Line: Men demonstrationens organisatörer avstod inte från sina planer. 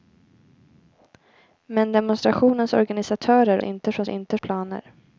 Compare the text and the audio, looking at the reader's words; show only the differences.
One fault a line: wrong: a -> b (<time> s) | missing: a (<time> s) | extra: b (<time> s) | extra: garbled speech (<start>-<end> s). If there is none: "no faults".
missing: avstod (3.6 s)
wrong: sina -> inte (4.1 s)